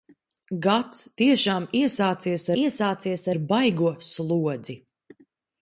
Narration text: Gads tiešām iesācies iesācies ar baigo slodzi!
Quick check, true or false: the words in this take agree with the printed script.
true